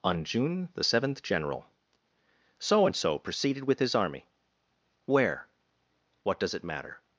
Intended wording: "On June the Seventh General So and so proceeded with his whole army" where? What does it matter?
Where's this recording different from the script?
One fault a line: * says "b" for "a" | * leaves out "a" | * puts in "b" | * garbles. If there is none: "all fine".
* leaves out "whole"